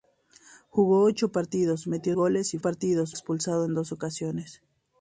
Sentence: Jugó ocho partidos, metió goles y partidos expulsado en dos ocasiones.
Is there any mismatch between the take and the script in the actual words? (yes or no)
no